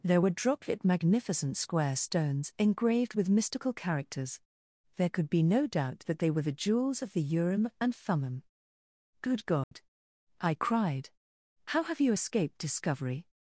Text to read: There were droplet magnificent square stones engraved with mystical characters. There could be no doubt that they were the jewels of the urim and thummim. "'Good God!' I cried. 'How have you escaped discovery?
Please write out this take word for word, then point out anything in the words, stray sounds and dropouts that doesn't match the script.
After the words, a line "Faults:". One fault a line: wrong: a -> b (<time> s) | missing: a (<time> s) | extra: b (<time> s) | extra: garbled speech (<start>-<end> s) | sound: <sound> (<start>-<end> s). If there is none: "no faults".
There were droplet magnificent square stones engraved with mystical characters. There could be no doubt that they were the jewels of the urim and thummim. "'Good God!' I cried. 'How have you escaped discovery?
Faults:
sound: dropout (9.6-9.7 s)